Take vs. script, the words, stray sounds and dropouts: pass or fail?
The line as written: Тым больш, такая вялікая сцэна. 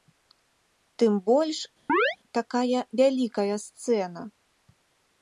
fail